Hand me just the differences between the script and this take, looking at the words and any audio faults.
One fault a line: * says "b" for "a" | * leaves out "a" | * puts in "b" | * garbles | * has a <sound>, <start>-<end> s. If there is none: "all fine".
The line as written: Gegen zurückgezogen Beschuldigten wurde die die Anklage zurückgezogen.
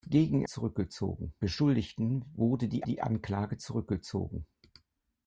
all fine